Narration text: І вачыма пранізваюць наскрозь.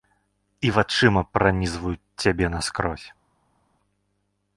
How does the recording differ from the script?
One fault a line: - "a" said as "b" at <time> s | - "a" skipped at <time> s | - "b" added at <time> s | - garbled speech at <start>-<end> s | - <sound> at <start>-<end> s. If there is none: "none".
- "цябе" added at 2.3 s